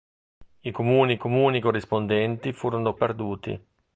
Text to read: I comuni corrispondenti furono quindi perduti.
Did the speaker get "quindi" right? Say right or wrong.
wrong